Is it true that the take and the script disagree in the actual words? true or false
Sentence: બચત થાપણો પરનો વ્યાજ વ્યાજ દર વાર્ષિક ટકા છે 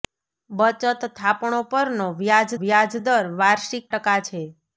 false